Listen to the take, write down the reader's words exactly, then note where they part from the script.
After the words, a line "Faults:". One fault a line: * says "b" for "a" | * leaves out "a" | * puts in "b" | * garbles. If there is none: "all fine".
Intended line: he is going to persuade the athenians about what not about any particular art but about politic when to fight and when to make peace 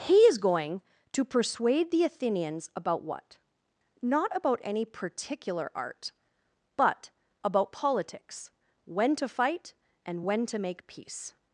he is going to persuade the athenians about what not about any particular art but about politics when to fight and when to make peace
Faults:
* says "politics" for "politic"